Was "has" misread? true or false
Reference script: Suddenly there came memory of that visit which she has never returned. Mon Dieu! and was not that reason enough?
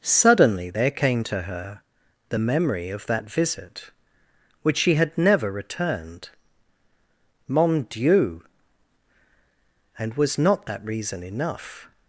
true